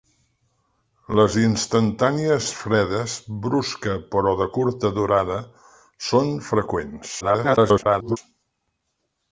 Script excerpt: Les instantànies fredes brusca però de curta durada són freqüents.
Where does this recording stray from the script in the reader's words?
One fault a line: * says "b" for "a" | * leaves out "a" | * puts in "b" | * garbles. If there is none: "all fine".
* garbles